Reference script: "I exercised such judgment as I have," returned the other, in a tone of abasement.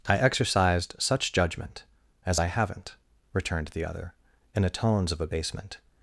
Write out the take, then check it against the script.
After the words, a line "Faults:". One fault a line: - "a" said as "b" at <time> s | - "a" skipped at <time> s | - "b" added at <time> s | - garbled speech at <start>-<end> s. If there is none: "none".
"I exercised such judgment as I haven't," returned the other, in a tones of abasement.
Faults:
- "have" said as "haven't" at 2.5 s
- "tone" said as "tones" at 4.7 s